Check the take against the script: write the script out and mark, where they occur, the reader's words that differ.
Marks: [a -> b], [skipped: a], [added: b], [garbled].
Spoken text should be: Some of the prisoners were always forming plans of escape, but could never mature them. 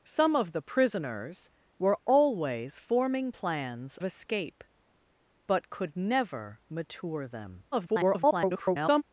Some of the prisoners were always forming plans [skipped: of] escape, but could never mature them. [garbled]